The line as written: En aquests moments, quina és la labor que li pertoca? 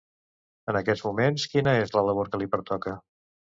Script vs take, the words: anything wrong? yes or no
no